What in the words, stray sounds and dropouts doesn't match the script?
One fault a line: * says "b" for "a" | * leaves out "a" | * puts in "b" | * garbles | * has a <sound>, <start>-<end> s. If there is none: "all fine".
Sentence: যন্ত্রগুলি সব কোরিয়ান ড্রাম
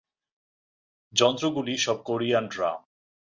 all fine